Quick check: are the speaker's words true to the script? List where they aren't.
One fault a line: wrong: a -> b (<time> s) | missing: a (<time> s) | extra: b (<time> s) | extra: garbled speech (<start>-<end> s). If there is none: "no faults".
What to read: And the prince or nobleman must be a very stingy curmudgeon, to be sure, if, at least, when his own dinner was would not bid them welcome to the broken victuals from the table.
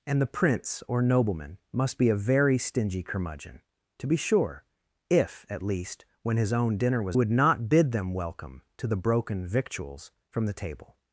no faults